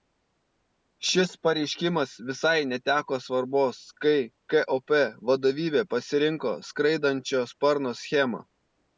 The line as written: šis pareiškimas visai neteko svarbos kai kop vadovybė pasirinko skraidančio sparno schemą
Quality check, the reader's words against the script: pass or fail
pass